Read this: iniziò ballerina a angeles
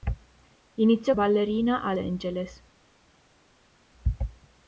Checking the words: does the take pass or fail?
pass